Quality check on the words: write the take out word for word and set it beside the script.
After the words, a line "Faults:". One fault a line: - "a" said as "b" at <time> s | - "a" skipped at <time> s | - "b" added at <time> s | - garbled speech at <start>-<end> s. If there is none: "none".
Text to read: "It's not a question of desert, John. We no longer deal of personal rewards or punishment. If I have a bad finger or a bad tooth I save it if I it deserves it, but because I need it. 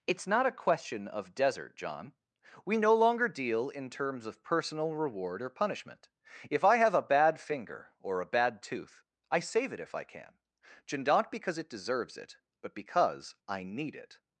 "It's not a question of desert, John. We no longer deal in terms of personal reward or punishment. If I have a bad finger or a bad tooth I save it if I can; not because it deserves it, but because I need it.
Faults:
- "in terms" added at 3.7 s
- "rewards" said as "reward" at 5.0 s
- "can not because" added at 10.0 s